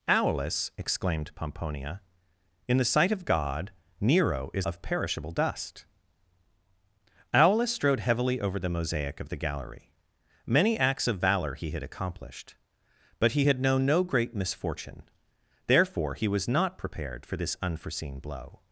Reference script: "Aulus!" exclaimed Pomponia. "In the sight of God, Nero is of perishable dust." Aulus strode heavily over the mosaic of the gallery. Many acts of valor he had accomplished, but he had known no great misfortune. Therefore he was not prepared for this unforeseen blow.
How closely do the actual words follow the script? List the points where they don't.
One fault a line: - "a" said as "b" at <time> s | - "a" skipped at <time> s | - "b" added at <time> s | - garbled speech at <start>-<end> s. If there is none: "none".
none